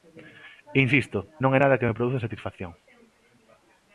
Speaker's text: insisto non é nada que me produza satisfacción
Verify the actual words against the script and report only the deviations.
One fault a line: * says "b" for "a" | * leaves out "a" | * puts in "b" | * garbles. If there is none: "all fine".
all fine